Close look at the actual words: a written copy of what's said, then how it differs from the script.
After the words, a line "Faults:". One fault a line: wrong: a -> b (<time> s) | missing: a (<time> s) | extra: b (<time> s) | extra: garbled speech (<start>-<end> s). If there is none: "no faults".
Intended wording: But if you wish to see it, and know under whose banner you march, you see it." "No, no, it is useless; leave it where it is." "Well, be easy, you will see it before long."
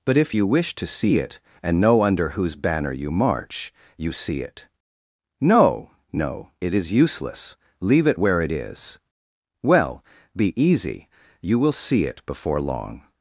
But if you wish to see it, and know under whose banner you march, you see it." "No, no, it is useless; leave it where it is." "Well, be easy, you will see it before long."
Faults:
no faults